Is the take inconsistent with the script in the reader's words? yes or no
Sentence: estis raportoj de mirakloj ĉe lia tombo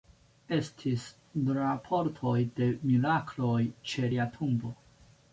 no